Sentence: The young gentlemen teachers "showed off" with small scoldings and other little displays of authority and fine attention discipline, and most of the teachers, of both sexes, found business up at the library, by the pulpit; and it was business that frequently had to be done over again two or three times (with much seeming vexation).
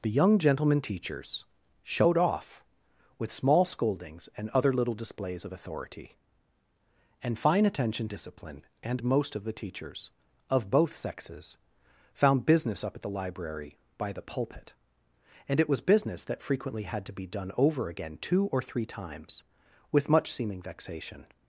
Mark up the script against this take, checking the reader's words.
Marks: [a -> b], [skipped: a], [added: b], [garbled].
The young gentlemen teachers "showed off" with small scoldings and other little displays of authority and fine attention discipline, and most of the teachers, of both sexes, found business up at the library, by the pulpit; and it was business that frequently had to be done over again two or three times (with much seeming vexation).